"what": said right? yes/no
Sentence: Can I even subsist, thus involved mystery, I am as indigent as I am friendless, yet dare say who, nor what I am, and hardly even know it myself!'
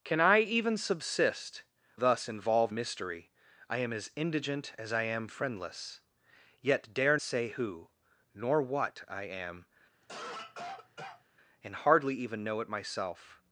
yes